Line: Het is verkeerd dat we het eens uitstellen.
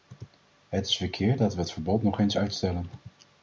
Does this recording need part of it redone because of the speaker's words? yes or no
yes